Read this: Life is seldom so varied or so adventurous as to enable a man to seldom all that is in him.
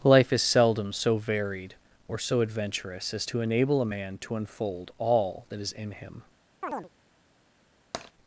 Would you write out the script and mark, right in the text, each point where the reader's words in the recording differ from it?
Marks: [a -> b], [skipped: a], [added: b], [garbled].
Life is seldom so varied or so adventurous as to enable a man to [seldom -> unfold] all that is in him.